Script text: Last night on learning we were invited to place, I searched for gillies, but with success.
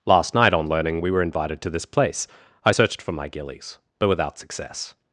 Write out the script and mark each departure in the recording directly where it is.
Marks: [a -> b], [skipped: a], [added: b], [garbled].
Last night on learning we were invited to [added: this] place, I searched for [added: my] gillies, but [with -> without] success.